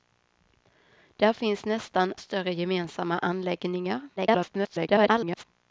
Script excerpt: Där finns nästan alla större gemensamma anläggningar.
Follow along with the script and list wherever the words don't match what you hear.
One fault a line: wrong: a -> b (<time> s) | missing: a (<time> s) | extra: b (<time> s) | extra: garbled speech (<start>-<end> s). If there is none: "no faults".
missing: alla (2.1 s)
extra: garbled speech (4.2-5.4 s)